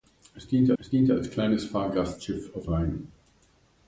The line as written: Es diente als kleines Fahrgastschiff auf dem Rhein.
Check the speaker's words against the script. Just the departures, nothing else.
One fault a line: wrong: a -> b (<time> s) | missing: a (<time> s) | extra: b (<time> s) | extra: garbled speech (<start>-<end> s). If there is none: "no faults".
extra: es diente (0.8 s)
missing: dem (2.7 s)